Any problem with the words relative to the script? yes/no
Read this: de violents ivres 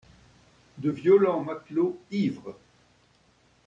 yes